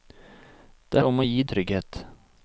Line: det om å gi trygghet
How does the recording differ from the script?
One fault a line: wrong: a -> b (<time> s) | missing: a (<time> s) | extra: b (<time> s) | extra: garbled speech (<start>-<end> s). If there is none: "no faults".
no faults